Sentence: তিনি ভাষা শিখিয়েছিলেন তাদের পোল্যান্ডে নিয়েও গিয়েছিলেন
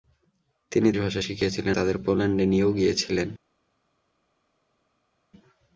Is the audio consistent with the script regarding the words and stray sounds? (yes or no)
yes